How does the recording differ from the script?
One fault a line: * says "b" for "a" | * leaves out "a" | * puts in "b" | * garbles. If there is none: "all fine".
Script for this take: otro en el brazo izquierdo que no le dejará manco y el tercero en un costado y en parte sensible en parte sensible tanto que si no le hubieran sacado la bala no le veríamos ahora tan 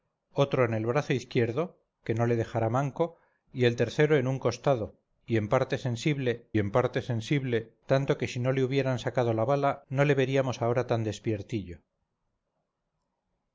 all fine